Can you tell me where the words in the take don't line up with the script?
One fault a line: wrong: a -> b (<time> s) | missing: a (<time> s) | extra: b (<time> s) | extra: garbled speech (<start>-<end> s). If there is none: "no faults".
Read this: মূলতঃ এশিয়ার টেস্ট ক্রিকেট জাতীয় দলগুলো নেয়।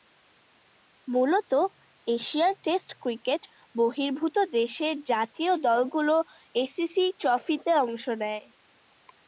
extra: বহির্ভূত দেশের (3.7 s)
extra: এসিসি ট্রফিতে অংশ (6.5 s)